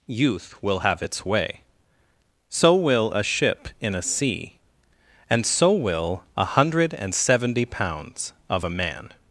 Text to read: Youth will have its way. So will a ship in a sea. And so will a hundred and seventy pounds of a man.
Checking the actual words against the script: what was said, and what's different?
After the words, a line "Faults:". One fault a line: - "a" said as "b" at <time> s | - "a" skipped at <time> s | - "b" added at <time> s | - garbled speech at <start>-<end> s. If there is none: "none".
Youth will have its way. So will a ship in a sea. And so will a hundred and seventy pounds of a man.
Faults:
none